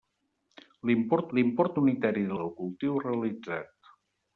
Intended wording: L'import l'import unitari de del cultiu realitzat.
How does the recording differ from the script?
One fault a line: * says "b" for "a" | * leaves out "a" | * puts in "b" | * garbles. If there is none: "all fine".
all fine